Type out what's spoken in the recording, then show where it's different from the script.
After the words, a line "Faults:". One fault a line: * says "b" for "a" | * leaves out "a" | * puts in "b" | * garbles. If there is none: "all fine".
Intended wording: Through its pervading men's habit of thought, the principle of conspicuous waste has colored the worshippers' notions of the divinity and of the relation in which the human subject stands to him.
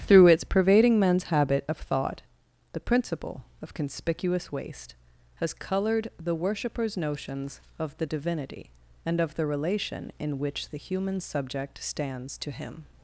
Through its pervading men's habit of thought, the principle of conspicuous waste has colored the worshippers' notions of the divinity and of the relation in which the human subject stands to him.
Faults:
all fine